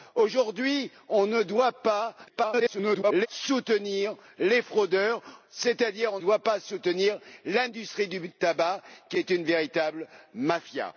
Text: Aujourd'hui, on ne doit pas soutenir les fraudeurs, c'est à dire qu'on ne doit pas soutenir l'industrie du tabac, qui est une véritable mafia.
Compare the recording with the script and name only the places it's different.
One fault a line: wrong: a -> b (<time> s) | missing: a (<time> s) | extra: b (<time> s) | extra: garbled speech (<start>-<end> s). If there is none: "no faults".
extra: garbled speech (2.3-3.3 s)
missing: ne (6.2 s)